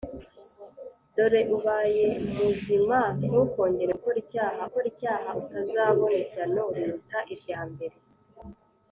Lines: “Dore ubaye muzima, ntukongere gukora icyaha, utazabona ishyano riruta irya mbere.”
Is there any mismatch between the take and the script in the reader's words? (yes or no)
yes